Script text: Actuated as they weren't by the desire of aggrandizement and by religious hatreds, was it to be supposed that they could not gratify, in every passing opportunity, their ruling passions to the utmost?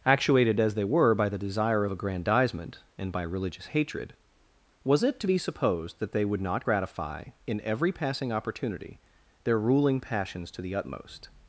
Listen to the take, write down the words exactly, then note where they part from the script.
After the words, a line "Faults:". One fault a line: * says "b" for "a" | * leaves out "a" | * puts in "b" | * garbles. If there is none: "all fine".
Actuated as they were by the desire of aggrandizement and by religious hatred, was it to be supposed that they would not gratify, in every passing opportunity, their ruling passions to the utmost?
Faults:
* says "were" for "weren't"
* says "hatred" for "hatreds"
* says "would" for "could"